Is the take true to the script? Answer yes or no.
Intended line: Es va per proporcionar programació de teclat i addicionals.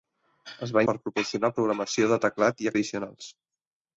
yes